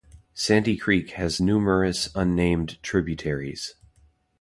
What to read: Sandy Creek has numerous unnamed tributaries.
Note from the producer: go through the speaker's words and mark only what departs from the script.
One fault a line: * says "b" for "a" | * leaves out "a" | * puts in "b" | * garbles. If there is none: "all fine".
all fine